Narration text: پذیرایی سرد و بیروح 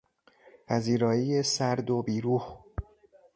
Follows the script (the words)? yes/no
yes